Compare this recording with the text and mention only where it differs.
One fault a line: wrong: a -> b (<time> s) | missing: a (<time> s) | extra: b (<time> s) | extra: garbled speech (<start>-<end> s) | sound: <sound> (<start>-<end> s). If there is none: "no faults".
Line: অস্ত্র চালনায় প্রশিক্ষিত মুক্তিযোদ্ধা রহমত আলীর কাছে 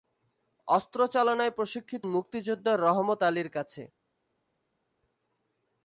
no faults